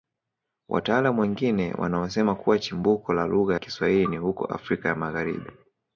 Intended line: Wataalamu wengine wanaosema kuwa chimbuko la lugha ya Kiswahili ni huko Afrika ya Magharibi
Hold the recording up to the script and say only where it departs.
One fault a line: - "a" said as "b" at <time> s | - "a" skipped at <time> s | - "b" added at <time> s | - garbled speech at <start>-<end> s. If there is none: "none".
- "ya" skipped at 3.6 s